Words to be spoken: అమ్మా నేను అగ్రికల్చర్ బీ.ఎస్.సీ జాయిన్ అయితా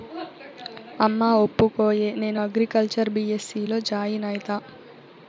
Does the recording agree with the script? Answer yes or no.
no